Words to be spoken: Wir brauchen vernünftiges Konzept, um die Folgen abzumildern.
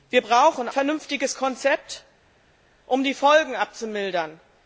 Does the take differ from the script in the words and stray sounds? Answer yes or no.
no